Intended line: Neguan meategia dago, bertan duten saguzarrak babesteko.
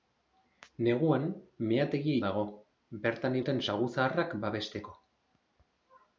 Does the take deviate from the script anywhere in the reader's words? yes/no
no